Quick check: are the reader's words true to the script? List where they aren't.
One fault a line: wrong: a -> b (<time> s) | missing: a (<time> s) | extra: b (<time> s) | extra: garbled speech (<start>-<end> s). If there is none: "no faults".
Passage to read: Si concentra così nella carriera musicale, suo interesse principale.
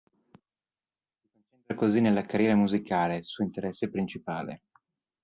no faults